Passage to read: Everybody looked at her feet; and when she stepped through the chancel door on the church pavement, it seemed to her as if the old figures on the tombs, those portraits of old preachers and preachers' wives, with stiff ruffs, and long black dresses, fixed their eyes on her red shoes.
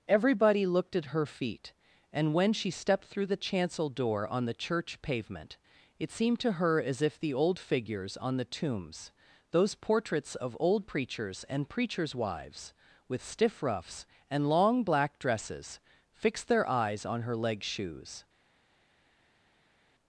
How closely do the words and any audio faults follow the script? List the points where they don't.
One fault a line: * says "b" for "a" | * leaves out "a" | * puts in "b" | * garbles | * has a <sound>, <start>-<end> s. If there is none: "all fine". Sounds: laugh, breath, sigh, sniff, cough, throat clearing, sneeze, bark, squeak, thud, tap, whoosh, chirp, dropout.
* says "leg" for "red"